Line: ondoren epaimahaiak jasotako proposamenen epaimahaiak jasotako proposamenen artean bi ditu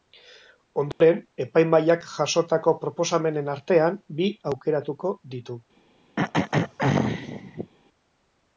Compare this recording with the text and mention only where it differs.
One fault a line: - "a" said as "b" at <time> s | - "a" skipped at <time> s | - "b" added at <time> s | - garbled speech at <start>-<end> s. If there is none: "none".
- "epaimahaiak jasotako proposamenen" skipped at 3.5 s
- "aukeratuko" added at 4.5 s